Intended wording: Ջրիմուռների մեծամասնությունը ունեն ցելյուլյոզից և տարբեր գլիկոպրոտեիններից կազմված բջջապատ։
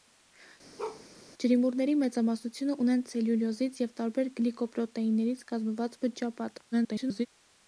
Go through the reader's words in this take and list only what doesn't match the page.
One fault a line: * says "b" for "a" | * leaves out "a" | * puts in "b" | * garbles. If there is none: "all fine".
* garbles